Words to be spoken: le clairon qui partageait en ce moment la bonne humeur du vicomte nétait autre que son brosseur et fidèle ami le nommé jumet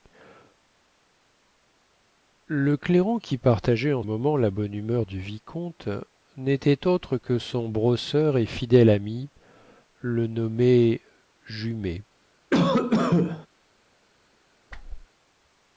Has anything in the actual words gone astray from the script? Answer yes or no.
yes